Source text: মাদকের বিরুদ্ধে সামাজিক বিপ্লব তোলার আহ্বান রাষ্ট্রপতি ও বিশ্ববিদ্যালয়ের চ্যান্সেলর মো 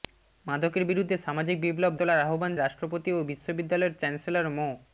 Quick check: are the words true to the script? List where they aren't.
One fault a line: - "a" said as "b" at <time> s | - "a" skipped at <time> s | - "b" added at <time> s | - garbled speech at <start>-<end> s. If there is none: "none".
none